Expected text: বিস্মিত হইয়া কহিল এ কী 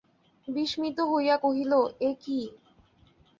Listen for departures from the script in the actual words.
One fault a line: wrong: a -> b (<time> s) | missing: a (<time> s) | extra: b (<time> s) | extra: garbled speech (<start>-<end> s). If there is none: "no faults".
no faults